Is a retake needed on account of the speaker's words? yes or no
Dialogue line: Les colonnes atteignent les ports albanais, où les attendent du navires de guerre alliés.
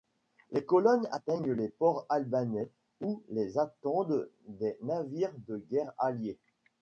yes